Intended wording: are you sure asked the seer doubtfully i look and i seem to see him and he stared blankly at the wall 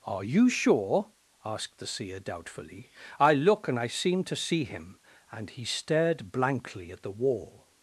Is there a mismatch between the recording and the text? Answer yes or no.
no